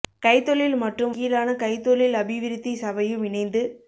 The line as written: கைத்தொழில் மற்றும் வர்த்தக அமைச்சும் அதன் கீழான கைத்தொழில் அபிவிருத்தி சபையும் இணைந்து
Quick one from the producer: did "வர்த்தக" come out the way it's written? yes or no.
no